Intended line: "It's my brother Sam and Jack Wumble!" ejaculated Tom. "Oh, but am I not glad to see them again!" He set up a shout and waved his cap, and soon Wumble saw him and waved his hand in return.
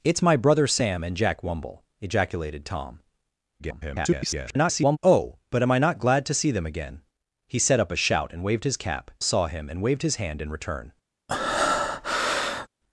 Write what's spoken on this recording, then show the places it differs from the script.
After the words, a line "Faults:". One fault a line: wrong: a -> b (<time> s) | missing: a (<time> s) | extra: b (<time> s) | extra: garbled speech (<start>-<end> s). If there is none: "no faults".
"It's my brother Sam and Jack Wumble!" ejaculated Tom. [garbled] "Oh, but am I not glad to see them again!" He set up a shout and waved his cap, saw him and waved his hand in return.
Faults:
extra: garbled speech (3.6-5.0 s)
missing: and soon Wumble (9.1 s)